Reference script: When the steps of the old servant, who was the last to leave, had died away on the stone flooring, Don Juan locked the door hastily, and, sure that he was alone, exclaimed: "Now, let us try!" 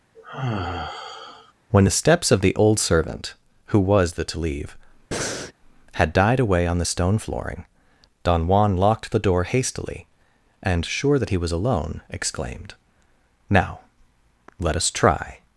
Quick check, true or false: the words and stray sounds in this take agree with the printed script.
false